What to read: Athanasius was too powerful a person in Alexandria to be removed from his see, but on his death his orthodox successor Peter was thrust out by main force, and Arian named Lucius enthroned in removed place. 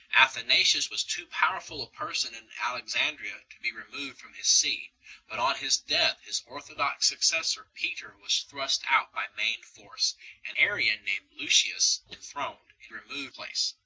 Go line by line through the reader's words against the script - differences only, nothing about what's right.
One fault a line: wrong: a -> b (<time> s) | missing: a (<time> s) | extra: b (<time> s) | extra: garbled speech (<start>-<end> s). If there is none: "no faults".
no faults